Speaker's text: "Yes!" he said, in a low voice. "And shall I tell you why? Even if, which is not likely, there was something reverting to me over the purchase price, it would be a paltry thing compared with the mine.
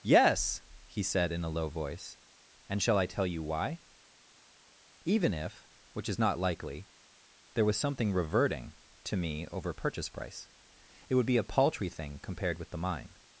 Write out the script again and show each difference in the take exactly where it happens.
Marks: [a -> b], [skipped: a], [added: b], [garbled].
"Yes!" he said, in a low voice. "And shall I tell you why? Even if, which is not likely, there was something reverting to me over [skipped: the] purchase price, it would be a paltry thing compared with the mine.